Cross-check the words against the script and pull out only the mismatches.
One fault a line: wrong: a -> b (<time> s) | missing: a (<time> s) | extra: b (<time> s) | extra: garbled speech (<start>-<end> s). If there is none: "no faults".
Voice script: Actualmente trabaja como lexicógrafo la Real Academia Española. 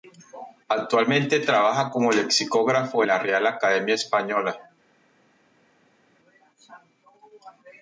no faults